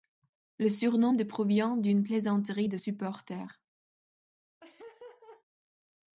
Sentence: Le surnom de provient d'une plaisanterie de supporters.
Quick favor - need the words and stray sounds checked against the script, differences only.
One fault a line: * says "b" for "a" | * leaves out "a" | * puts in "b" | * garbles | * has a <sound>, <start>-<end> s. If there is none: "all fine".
* has a laugh, 4.6-5.4 s